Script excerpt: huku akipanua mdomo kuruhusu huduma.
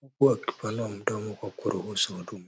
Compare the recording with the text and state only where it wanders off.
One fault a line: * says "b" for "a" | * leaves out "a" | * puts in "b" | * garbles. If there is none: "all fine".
* puts in "kwa"